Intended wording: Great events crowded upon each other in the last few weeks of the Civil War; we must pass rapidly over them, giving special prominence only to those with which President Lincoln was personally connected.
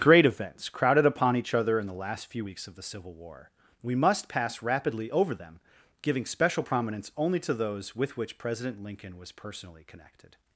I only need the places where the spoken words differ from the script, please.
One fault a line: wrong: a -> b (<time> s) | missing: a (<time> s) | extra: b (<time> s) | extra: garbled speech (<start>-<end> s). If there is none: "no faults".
no faults